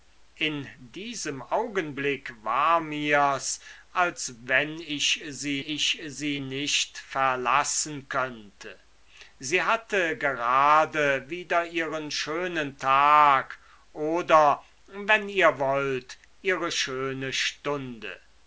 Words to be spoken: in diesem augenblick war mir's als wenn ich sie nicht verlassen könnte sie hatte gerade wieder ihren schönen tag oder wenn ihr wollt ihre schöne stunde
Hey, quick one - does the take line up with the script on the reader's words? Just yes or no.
no